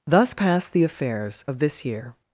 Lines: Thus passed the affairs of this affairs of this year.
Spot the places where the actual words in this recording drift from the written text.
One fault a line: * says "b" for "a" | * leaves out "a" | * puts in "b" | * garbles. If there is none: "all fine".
* leaves out "affairs of this"